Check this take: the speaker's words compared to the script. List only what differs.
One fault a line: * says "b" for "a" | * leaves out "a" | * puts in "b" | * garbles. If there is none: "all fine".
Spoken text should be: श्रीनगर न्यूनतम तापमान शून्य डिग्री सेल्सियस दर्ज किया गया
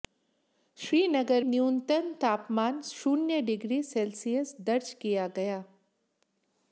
all fine